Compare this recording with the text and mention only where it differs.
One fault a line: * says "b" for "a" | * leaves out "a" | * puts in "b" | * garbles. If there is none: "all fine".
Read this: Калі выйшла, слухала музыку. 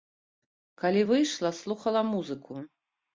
all fine